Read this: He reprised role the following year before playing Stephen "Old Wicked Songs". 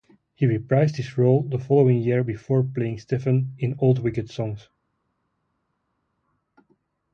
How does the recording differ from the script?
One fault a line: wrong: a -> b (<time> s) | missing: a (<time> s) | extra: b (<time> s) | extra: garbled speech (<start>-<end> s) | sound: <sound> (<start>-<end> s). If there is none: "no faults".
extra: his (0.9 s)
extra: in (3.6 s)